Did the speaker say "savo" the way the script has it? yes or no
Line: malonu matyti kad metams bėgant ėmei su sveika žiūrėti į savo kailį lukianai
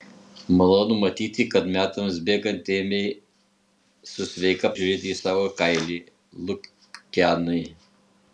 yes